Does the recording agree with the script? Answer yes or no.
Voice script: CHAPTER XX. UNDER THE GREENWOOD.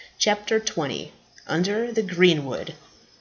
yes